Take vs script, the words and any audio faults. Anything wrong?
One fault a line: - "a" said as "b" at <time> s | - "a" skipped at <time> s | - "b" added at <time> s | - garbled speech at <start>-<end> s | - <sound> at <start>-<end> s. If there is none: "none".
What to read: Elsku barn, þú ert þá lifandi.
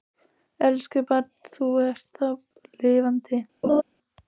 - laugh at 3.6-3.8 s